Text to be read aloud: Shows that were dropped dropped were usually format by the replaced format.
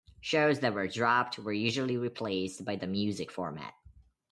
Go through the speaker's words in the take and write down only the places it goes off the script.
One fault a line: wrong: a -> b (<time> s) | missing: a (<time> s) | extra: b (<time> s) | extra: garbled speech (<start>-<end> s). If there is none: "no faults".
missing: dropped (1.4 s)
wrong: format -> replaced (1.9 s)
wrong: replaced -> music (2.9 s)